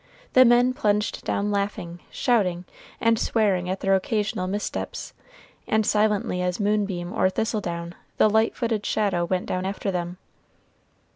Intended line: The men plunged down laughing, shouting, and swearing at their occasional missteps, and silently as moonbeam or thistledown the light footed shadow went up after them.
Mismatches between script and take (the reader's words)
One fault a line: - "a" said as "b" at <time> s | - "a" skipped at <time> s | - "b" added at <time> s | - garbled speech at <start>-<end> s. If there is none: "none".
- "up" said as "down" at 9.5 s